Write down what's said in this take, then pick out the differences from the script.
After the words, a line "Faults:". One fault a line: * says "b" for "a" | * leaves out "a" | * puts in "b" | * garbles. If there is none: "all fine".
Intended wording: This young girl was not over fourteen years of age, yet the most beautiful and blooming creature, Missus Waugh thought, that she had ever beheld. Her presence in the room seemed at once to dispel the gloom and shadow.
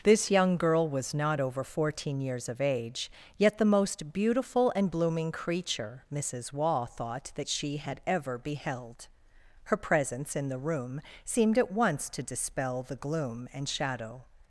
This young girl was not over fourteen years of age, yet the most beautiful and blooming creature, Missus Waugh thought, that she had ever beheld. Her presence in the room seemed at once to dispel the gloom and shadow.
Faults:
all fine